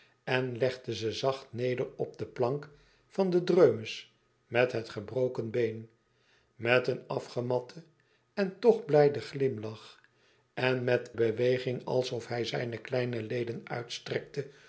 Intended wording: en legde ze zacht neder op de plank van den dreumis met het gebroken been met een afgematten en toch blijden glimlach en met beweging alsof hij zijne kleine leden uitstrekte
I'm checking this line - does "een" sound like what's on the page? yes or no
yes